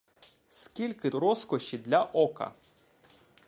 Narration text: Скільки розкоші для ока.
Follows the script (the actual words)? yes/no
yes